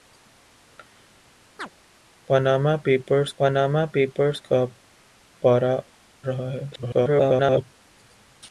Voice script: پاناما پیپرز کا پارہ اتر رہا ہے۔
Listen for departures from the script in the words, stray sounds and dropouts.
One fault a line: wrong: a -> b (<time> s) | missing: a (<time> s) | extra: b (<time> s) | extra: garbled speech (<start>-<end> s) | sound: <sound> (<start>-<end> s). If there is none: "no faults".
sound: chirp (1.6-1.7 s)
extra: پاناما پیپرز (3.4 s)
missing: اتر (5.7 s)
extra: garbled speech (6.7-7.6 s)